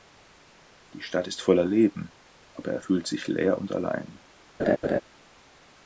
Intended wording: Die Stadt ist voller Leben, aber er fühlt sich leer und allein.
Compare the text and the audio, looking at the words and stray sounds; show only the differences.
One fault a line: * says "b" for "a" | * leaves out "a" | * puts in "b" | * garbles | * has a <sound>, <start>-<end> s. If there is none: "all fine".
* has a laugh, 4.6-5.0 s